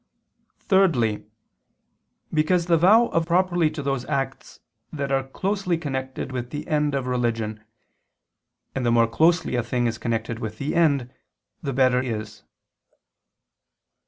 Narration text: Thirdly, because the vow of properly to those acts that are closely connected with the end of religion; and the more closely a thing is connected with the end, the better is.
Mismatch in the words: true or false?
false